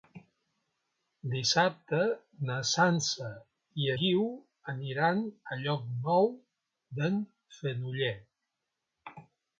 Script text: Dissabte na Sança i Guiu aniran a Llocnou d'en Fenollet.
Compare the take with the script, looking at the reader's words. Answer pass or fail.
pass